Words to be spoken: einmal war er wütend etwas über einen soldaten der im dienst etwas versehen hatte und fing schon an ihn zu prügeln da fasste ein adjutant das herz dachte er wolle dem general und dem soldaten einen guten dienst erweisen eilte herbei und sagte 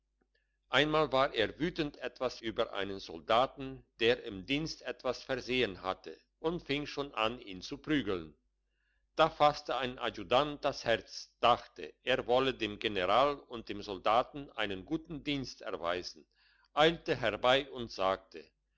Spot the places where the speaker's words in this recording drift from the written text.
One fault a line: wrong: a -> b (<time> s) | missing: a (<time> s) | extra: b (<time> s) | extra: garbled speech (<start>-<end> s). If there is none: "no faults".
no faults